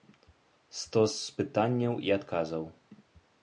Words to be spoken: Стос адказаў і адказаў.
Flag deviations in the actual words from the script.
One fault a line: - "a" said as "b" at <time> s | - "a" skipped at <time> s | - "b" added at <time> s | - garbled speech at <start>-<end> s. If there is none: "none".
- "адказаў" said as "пытанняў" at 1.4 s